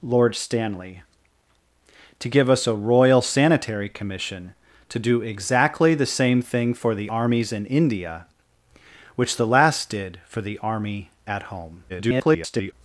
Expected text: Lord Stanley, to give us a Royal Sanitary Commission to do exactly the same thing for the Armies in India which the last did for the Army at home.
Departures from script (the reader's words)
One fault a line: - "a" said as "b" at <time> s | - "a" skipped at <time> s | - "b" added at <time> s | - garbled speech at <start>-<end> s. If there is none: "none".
- garbled speech at 11.9-12.7 s